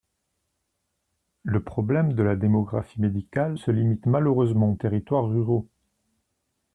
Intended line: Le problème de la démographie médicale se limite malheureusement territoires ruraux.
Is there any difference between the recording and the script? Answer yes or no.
no